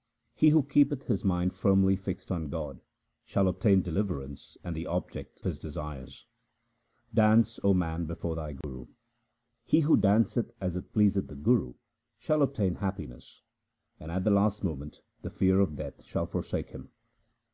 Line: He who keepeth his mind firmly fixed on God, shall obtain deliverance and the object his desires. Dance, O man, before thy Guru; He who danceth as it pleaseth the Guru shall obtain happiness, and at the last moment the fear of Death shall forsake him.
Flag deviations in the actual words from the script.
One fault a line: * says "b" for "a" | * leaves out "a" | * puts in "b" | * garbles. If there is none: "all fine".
all fine